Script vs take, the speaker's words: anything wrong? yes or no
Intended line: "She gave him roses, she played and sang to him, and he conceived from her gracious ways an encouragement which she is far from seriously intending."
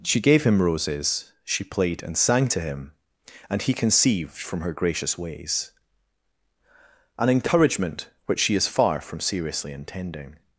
no